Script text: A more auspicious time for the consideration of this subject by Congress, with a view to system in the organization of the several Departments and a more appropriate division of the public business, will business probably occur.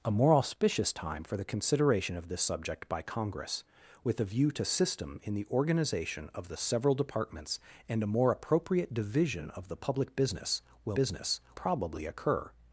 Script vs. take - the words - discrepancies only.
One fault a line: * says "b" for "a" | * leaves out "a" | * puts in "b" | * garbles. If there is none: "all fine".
all fine